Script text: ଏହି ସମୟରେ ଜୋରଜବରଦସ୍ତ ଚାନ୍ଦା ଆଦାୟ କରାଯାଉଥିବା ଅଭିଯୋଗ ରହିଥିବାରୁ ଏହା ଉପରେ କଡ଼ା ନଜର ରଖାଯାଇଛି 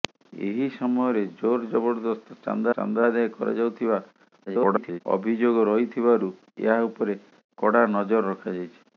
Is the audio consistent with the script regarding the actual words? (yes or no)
no